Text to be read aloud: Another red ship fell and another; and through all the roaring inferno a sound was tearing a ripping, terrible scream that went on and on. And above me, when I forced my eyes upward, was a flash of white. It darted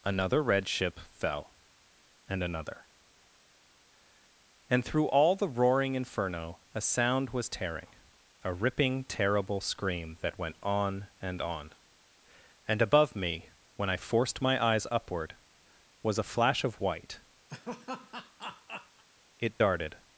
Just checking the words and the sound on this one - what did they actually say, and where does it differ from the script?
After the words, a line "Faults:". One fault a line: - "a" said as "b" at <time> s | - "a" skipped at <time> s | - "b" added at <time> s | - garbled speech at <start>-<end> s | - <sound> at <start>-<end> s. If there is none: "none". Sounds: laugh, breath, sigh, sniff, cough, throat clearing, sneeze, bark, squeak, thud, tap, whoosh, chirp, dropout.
Another red ship fell and another; and through all the roaring inferno a sound was tearing a ripping, terrible scream that went on and on. And above me, when I forced my eyes upward, was a flash of white. It darted
Faults:
- laugh at 17.5-19.0 s